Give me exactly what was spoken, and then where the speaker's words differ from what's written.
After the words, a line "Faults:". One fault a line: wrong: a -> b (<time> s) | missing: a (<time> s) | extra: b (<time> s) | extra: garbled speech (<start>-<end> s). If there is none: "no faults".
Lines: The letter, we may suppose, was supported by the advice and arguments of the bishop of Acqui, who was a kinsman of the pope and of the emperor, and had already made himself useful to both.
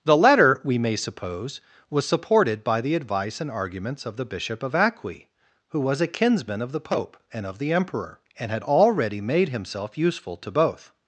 The letter, we may suppose, was supported by the advice and arguments of the bishop of Acqui, who was a kinsman of the pope and of the emperor, and had already made himself useful to both.
Faults:
no faults